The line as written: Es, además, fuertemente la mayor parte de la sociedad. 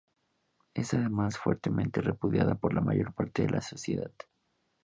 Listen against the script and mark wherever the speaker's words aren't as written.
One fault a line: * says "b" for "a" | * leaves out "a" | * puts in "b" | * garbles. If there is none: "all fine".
* puts in "repudiada por"